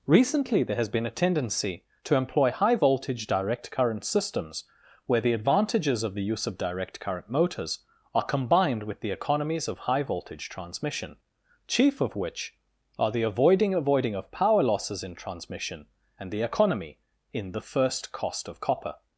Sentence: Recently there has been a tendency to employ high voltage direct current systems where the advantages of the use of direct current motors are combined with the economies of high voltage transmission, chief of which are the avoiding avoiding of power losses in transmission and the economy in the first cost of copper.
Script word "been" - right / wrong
right